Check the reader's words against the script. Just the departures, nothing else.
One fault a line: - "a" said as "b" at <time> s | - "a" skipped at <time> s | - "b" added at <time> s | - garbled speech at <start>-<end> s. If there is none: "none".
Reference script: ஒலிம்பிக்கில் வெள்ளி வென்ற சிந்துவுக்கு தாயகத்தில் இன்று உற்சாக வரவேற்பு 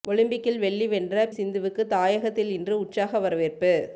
none